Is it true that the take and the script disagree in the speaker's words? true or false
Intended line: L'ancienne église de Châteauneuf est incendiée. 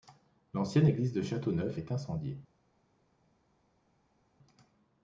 false